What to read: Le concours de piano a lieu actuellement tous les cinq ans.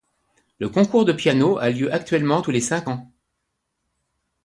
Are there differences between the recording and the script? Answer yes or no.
no